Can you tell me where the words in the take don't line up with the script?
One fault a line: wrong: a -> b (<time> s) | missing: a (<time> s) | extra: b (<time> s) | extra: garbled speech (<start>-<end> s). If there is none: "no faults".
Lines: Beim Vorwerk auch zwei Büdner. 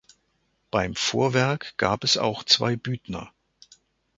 extra: gab es (1.8 s)